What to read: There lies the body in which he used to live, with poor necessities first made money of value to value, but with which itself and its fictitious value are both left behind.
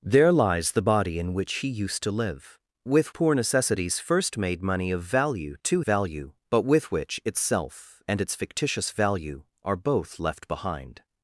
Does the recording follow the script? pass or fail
pass